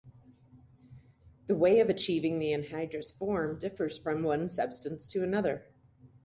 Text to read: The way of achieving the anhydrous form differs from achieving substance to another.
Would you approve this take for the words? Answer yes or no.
no